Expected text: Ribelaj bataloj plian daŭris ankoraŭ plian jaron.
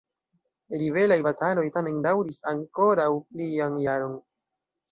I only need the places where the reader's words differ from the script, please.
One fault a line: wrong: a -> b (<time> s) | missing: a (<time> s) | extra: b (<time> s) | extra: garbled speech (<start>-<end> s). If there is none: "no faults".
wrong: plian -> tamen (1.7 s)